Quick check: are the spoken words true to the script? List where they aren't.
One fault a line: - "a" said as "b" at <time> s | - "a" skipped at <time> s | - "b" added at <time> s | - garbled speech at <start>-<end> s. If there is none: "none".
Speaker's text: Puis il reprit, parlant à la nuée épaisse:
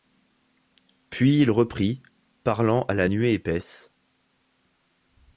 none